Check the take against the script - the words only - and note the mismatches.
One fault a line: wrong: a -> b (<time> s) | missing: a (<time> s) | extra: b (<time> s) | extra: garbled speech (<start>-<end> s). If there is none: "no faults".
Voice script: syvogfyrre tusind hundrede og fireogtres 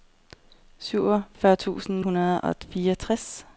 no faults